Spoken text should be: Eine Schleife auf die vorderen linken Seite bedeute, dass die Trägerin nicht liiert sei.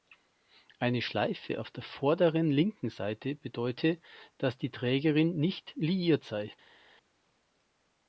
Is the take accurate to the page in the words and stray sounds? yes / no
no